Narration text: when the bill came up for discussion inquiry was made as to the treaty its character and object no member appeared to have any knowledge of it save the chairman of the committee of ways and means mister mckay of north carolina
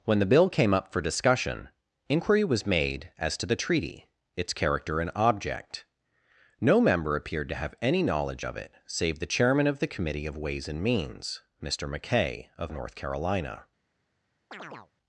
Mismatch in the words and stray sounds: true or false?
true